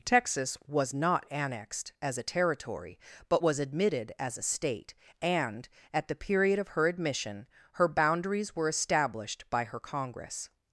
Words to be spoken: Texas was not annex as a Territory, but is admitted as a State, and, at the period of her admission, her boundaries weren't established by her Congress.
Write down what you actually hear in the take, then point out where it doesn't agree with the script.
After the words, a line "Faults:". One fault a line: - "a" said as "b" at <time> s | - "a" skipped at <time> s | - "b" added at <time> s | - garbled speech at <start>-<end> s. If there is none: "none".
Texas was not annexed as a Territory, but was admitted as a State, and, at the period of her admission, her boundaries were established by her Congress.
Faults:
- "annex" said as "annexed" at 1.3 s
- "is" said as "was" at 3.4 s
- "weren't" said as "were" at 8.5 s